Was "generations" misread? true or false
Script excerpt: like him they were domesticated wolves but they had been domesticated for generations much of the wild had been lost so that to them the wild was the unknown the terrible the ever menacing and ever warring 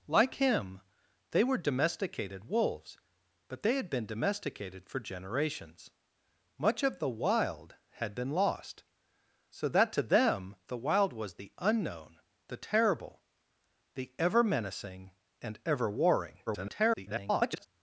false